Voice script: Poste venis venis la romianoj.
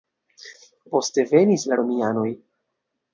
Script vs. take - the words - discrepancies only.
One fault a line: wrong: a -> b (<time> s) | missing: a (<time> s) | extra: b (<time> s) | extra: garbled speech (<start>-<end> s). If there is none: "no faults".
missing: venis (1.6 s)